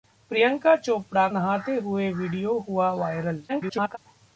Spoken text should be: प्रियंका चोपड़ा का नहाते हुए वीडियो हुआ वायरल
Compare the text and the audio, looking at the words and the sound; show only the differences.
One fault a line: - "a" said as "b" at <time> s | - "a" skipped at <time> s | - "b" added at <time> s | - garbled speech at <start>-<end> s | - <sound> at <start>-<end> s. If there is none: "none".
- "का" skipped at 1.3 s
- garbled speech at 3.5-4.0 s